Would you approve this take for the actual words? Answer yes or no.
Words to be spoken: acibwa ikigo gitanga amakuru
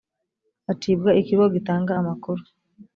yes